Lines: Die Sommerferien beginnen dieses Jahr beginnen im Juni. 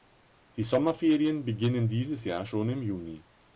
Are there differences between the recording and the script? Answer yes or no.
yes